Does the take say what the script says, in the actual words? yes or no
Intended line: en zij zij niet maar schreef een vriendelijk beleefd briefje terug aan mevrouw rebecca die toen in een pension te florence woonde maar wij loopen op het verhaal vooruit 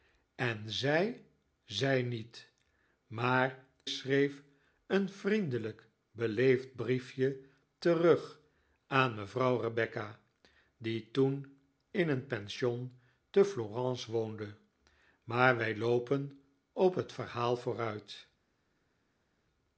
yes